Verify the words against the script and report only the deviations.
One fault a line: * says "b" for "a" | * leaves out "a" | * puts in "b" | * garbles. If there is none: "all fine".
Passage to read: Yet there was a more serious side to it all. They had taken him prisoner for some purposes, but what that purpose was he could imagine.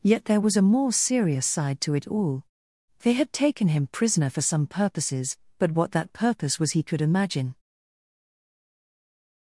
all fine